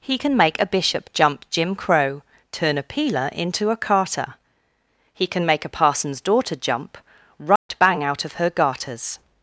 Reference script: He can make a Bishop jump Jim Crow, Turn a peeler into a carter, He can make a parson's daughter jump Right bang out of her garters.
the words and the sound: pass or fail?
fail